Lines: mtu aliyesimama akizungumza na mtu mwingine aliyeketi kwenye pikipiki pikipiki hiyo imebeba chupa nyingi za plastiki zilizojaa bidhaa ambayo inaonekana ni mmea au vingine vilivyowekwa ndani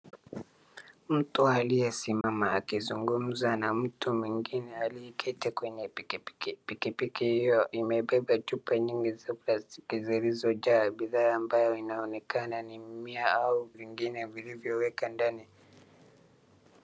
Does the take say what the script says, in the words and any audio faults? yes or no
no